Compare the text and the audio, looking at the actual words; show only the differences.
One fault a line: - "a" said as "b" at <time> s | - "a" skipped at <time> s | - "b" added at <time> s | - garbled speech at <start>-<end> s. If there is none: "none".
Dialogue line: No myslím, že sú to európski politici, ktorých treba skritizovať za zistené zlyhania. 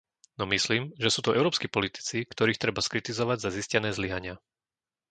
none